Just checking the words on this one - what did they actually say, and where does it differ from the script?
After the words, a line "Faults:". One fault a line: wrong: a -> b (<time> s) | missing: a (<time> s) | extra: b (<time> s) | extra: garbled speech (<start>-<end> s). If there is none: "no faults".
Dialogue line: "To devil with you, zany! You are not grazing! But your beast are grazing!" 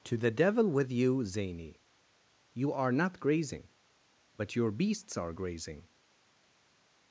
"To the devil with you, zany! You are not grazing! But your beasts are grazing!"
Faults:
extra: the (0.2 s)
wrong: beast -> beasts (4.7 s)